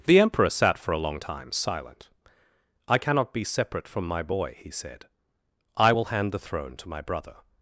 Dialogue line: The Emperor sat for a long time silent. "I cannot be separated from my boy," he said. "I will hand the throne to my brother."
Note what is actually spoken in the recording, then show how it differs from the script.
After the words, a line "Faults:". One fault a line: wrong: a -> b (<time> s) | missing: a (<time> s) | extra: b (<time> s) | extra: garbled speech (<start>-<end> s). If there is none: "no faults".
The Emperor sat for a long time silent. "I cannot be separate from my boy," he said. "I will hand the throne to my brother."
Faults:
wrong: separated -> separate (3.4 s)